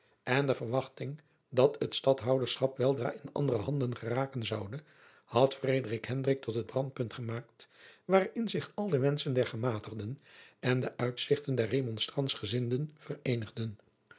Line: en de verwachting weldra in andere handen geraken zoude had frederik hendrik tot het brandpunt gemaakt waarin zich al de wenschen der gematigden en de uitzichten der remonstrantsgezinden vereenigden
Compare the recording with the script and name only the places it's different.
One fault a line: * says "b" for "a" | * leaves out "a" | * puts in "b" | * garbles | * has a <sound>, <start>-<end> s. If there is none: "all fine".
* puts in "dat het stadhouderschap"